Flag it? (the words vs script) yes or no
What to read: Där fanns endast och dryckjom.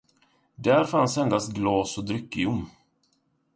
yes